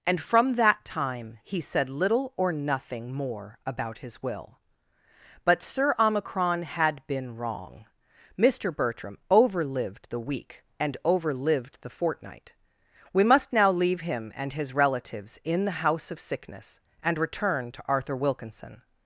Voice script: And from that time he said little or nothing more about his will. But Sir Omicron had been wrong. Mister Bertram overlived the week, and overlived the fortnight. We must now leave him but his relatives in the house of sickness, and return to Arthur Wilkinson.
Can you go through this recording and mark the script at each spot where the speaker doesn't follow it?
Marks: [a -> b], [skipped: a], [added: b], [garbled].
And from that time he said little or nothing more about his will. But Sir Omicron had been wrong. Mister Bertram overlived the week, and overlived the fortnight. We must now leave him [but -> and] his relatives in the house of sickness, and return to Arthur Wilkinson.